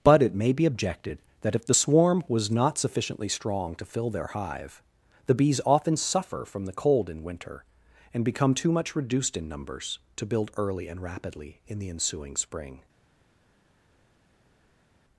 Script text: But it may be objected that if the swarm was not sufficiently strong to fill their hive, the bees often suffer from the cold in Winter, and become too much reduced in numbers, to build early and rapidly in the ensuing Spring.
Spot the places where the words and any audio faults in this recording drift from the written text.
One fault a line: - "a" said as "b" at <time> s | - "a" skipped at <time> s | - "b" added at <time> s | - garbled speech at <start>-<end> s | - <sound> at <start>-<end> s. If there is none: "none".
none